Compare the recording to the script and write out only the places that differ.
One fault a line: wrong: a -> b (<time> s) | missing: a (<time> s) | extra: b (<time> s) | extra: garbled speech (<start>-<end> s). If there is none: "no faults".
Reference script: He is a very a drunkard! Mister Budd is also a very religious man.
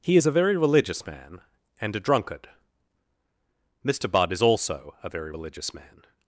extra: religious man and (0.6 s)